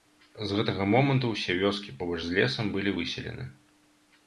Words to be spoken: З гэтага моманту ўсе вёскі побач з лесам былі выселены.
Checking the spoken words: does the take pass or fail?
pass